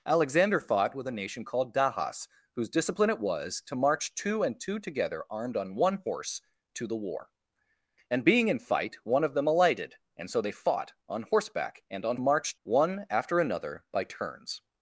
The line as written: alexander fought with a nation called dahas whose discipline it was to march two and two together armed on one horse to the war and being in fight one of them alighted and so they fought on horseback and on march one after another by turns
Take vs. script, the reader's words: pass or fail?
pass